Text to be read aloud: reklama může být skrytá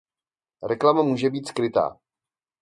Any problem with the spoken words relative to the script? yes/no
no